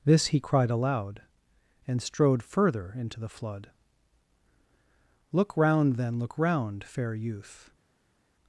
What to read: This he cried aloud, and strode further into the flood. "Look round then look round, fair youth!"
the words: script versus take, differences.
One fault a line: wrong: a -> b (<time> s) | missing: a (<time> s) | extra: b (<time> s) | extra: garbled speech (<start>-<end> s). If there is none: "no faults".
no faults